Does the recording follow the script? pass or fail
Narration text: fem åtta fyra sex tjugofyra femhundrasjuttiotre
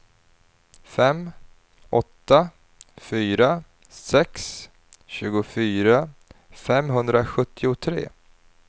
pass